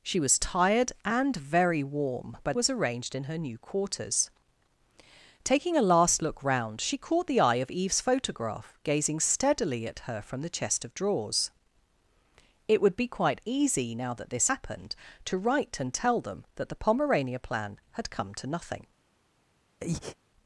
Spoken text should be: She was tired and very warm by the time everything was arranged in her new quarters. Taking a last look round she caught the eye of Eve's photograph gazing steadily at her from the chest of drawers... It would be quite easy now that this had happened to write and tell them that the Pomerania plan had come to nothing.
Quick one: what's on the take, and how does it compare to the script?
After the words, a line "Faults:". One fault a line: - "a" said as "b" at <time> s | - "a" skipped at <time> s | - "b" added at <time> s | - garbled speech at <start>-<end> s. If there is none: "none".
She was tired and very warm by was arranged in her new quarters. Taking a last look round she caught the eye of Eve's photograph gazing steadily at her from the chest of drawers... It would be quite easy now that this happened to write and tell them that the Pomerania plan had come to nothing.
Faults:
- "the time everything" skipped at 2.5 s
- "had" skipped at 14.5 s